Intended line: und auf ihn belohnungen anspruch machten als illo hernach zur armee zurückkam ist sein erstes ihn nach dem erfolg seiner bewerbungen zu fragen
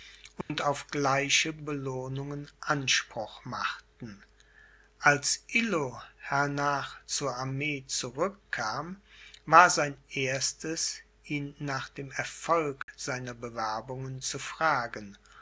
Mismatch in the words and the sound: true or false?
true